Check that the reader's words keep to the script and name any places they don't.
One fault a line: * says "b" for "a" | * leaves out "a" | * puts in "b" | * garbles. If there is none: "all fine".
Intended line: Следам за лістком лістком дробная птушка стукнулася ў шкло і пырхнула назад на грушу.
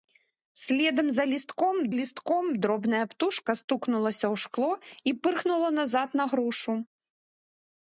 all fine